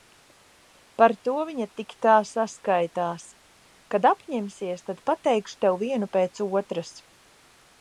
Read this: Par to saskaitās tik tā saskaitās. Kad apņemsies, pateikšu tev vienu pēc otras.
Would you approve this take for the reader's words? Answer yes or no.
no